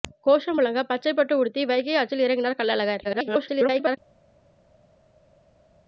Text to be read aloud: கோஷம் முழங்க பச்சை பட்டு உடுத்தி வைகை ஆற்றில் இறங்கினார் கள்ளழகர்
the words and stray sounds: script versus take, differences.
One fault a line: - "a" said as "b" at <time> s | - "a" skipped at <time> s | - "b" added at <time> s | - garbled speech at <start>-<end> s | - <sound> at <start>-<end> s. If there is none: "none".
- garbled speech at 3.0-4.0 s